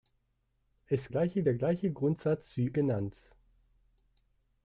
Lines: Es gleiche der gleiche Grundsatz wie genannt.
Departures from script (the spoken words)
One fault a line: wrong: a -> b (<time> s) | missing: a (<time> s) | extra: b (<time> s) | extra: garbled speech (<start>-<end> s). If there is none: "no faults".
no faults